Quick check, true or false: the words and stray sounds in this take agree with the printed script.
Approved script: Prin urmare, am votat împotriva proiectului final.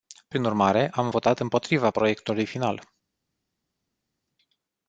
true